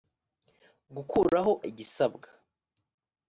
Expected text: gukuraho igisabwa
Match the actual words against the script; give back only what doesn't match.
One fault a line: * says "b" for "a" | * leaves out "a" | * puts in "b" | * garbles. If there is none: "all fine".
all fine